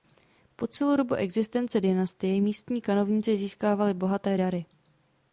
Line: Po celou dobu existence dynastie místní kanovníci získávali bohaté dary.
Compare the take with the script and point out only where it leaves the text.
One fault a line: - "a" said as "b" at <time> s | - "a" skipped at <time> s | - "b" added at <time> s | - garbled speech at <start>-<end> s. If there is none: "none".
none